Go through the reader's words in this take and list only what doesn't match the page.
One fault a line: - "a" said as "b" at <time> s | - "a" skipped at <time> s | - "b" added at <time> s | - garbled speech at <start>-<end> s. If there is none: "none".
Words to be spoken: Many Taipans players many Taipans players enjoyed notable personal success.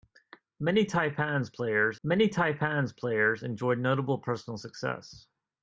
none